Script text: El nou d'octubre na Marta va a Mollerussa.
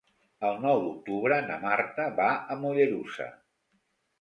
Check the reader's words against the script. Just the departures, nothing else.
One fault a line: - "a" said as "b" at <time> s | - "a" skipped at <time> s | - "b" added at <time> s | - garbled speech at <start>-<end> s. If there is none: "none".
none